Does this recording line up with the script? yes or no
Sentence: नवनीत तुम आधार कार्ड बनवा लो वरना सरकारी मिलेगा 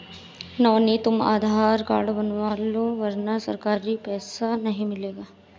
no